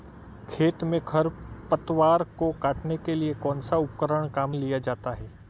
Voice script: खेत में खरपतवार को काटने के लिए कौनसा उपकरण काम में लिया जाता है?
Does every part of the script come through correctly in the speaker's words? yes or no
no